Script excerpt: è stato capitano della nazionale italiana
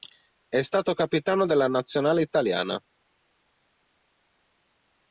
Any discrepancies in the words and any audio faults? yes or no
no